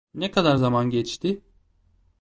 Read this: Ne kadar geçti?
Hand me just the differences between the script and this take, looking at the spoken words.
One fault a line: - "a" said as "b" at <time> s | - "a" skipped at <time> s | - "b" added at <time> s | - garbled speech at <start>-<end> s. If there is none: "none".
- "zaman" added at 0.5 s